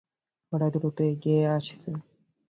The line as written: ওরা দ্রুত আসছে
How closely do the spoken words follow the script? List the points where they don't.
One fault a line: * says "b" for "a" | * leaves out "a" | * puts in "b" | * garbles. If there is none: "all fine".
* puts in "এগিয়ে"